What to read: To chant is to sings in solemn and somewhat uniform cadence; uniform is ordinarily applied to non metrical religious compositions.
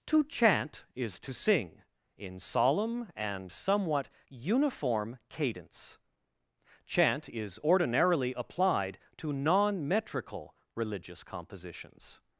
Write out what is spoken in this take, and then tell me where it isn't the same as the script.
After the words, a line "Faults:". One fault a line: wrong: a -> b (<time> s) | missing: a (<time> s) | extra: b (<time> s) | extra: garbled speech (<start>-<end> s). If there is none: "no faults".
To chant is to sing in solemn and somewhat uniform cadence; chant is ordinarily applied to non metrical religious compositions.
Faults:
wrong: sings -> sing (1.3 s)
wrong: uniform -> chant (6.9 s)